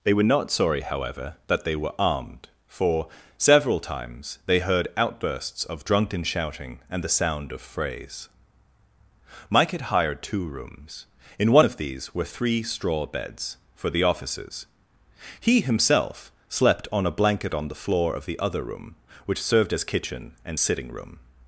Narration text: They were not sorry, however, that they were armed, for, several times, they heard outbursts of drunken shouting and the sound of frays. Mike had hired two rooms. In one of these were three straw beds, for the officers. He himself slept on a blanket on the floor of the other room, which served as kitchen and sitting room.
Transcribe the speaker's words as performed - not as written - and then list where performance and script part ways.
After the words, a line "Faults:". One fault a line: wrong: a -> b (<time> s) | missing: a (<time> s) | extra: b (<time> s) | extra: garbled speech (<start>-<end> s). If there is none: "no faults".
They were not sorry, however, that they were armed, for, several times, they heard outbursts of drunken shouting and the sound of frays. Mike had hired two rooms. In one of these were three straw beds, for the officers. He himself slept on a blanket on the floor of the other room, which served as kitchen and sitting room.
Faults:
no faults